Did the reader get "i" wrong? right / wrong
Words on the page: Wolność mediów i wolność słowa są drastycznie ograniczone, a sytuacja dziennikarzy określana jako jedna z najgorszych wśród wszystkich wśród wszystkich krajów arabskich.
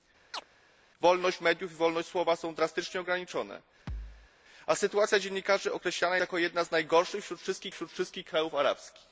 right